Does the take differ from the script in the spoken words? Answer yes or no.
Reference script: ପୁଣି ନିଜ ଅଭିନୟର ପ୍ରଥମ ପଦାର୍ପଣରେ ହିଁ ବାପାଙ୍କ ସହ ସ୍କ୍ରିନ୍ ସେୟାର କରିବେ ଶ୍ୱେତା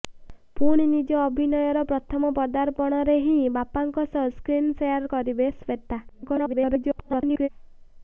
yes